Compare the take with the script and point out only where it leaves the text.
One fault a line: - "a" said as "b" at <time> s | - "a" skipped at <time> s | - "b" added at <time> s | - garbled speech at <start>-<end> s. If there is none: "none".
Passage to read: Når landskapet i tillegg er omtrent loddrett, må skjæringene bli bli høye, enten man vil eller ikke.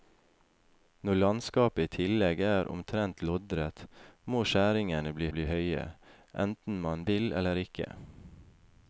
none